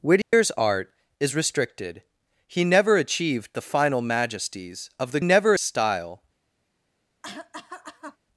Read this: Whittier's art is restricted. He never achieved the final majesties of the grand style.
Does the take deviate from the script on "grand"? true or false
true